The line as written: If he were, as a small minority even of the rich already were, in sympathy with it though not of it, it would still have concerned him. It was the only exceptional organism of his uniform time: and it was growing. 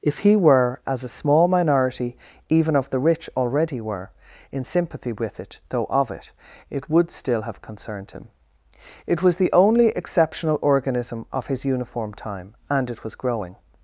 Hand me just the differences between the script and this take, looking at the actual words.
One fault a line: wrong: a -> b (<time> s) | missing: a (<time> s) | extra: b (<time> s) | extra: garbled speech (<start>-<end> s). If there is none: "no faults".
missing: not (5.9 s)